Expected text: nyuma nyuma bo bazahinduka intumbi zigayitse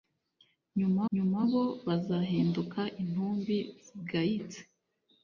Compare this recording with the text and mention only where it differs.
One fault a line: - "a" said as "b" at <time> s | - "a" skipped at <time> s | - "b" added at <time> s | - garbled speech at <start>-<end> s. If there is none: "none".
none